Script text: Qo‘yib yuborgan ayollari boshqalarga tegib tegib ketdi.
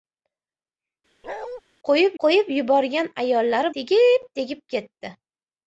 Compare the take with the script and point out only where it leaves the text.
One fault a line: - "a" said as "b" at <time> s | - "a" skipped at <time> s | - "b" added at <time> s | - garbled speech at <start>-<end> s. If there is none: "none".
- "qo‘yib" added at 2.2 s
- "boshqalarga" skipped at 3.7 s